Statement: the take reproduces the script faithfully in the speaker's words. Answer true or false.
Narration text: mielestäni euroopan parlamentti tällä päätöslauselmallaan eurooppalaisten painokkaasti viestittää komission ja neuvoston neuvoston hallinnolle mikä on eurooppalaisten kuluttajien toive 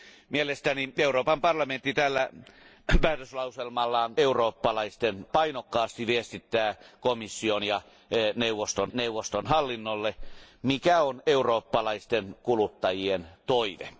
true